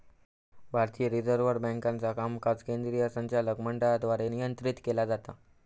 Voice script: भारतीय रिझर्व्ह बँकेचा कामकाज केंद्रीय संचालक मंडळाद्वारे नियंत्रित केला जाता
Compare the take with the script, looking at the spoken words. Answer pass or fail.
pass